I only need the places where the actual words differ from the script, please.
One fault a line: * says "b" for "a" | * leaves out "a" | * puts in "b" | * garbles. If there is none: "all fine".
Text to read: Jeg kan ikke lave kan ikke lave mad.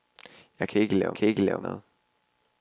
all fine